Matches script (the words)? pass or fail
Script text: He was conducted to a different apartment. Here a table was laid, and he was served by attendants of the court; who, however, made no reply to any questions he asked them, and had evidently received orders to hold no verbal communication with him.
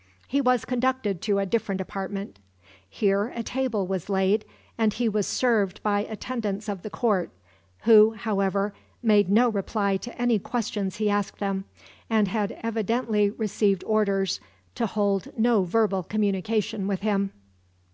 pass